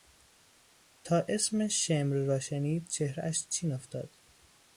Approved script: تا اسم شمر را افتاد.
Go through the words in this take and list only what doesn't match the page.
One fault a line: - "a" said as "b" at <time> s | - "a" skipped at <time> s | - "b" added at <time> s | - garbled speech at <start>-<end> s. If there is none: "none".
- "شنید چهرهاش چین" added at 2.4 s